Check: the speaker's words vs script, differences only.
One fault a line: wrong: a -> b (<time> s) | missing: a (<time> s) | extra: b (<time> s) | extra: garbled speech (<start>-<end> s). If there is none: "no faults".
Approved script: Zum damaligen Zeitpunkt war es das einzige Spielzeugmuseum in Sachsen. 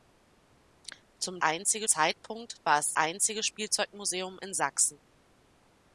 wrong: damaligen -> einzige (1.4 s)
missing: das (2.9 s)